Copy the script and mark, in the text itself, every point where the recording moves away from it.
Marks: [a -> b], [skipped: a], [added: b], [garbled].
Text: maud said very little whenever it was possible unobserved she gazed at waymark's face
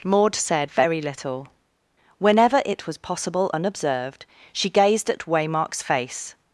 maud said very little whenever it was possible unobserved she gazed at waymark's face